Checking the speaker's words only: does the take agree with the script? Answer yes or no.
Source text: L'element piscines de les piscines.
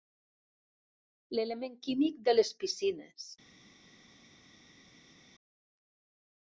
no